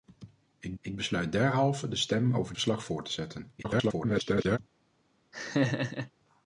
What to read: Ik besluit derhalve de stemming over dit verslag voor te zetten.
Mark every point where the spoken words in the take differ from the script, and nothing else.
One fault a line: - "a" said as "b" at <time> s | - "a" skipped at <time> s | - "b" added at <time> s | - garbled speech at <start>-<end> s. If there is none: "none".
- "ik" added at 0.8 s
- "dit" skipped at 2.5 s
- garbled speech at 3.6-4.6 s